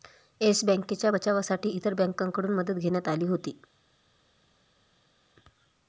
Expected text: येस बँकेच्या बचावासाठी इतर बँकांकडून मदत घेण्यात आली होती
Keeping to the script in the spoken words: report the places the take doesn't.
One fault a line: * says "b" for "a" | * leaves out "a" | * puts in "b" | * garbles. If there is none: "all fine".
all fine